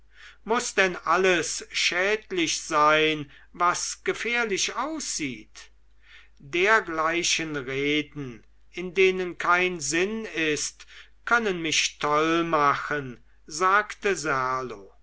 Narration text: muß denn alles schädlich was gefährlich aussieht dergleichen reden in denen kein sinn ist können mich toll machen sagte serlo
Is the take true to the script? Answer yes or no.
no